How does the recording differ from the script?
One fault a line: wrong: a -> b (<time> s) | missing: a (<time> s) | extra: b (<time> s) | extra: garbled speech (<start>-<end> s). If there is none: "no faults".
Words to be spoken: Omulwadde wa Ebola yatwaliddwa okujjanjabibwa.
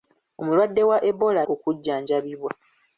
missing: yatwaliddwa (1.4 s)